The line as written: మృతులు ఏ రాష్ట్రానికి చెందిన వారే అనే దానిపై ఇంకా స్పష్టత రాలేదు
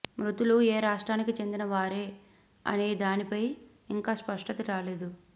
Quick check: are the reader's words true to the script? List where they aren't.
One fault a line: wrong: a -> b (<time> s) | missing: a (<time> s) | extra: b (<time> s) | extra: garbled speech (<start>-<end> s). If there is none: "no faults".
no faults